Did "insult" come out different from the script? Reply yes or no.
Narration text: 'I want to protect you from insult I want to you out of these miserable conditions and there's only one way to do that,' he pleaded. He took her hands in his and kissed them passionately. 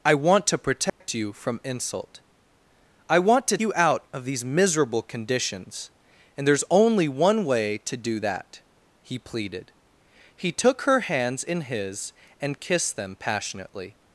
no